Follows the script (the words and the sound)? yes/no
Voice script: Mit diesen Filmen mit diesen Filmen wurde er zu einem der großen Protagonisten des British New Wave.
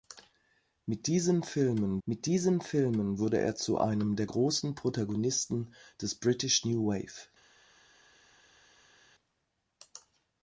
yes